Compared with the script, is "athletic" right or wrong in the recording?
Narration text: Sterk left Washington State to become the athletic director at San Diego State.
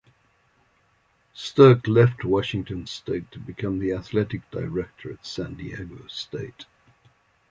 right